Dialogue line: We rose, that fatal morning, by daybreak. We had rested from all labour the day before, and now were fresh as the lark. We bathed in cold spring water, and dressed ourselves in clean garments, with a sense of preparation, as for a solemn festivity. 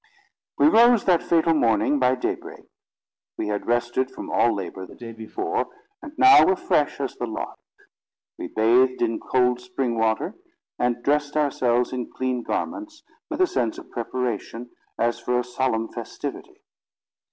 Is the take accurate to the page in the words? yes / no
yes